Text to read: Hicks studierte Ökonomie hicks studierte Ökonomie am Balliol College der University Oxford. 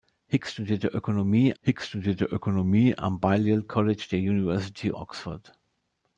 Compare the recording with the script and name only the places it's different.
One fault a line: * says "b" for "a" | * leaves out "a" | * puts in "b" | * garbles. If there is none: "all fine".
all fine